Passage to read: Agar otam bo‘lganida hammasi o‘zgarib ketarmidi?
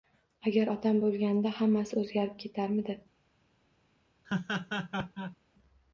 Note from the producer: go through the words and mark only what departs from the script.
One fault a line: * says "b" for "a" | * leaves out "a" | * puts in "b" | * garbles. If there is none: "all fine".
all fine